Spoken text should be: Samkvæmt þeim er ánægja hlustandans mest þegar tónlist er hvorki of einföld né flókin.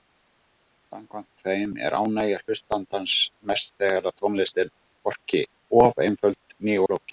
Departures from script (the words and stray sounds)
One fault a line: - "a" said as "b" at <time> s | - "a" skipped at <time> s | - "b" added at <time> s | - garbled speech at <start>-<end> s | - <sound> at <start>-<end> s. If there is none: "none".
none